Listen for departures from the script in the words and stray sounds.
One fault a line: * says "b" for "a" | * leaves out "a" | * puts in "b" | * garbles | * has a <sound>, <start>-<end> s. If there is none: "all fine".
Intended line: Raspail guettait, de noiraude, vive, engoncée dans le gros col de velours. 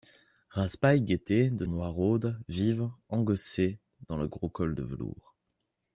all fine